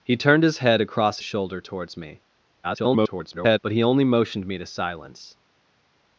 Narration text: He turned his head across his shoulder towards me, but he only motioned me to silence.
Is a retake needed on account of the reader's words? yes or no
yes